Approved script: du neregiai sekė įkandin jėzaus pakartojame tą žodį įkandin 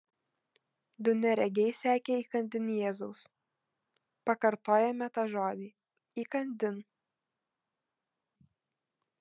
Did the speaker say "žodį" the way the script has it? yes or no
yes